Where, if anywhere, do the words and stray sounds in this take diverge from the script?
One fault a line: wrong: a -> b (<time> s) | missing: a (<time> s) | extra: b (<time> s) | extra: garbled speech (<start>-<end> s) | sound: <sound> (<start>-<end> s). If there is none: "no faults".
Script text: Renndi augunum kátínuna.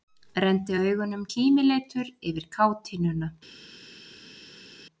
extra: kímileitur yfir (1.3 s)